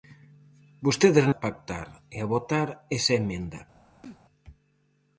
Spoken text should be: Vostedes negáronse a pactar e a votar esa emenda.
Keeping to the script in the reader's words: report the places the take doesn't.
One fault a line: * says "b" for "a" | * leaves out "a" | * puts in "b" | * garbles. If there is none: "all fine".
* leaves out "negáronse"